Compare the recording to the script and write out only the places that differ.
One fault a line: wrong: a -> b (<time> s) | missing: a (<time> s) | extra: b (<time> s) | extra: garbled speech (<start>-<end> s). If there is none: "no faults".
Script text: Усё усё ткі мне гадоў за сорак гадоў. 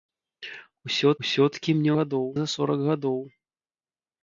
no faults